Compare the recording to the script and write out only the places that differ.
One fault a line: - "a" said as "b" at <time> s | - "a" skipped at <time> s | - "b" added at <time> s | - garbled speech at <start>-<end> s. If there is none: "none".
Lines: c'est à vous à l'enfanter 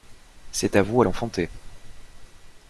none